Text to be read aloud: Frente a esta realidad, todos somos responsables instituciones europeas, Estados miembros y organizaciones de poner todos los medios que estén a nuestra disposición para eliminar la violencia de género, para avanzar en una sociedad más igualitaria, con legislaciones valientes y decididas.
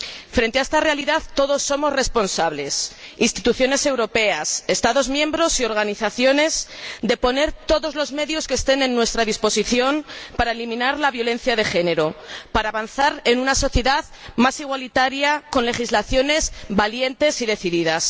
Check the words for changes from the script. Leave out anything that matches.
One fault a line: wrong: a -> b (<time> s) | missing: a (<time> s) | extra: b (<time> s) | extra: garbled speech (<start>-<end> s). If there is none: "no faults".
no faults